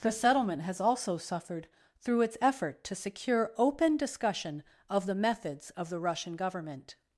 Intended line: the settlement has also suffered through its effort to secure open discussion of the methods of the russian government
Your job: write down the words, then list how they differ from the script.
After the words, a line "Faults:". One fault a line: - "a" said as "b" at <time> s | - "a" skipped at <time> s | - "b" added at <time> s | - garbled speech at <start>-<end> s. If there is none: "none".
the settlement has also suffered through its effort to secure open discussion of the methods of the russian government
Faults:
none